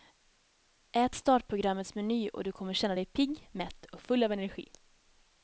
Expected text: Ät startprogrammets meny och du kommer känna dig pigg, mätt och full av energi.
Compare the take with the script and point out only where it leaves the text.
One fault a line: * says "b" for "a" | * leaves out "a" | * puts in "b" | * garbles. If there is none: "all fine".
all fine